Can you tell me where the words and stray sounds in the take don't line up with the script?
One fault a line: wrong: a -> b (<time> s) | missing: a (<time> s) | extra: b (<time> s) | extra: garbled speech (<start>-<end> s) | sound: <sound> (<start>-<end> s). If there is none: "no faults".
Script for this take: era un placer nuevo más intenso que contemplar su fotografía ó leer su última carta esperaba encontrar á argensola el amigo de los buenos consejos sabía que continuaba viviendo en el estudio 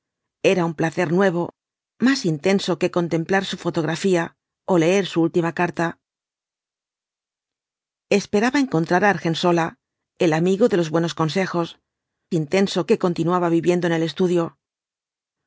wrong: sabía -> intenso (12.3 s)